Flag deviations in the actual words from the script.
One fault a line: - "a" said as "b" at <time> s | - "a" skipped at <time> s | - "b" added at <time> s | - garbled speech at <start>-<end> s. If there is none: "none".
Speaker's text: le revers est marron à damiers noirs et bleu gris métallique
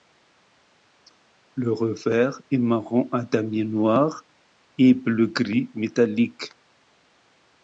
none